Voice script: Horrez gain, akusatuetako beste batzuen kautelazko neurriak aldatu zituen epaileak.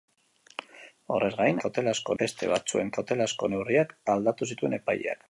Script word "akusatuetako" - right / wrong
wrong